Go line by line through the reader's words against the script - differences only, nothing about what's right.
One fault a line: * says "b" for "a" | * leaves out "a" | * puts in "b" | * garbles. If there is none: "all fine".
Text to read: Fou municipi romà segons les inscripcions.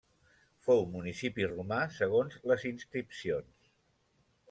all fine